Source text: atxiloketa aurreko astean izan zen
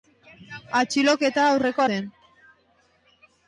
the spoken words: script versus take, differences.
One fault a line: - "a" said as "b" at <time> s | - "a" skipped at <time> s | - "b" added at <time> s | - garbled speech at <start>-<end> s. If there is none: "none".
- "astean izan" skipped at 1.9 s